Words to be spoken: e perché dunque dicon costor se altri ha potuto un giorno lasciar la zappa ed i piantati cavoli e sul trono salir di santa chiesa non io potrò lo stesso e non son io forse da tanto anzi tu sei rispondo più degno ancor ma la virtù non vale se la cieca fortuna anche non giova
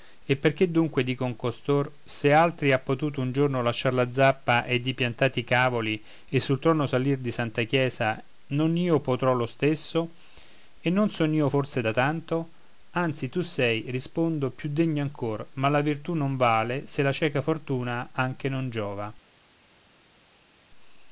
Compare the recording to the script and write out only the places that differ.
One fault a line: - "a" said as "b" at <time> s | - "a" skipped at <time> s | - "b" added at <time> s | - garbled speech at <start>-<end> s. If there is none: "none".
none